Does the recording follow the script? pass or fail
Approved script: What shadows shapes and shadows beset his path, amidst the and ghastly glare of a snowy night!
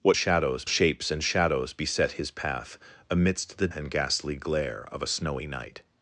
pass